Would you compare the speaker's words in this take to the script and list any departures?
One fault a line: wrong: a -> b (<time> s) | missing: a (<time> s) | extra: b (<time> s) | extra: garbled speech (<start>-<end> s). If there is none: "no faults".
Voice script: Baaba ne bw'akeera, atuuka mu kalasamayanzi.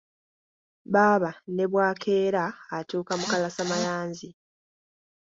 no faults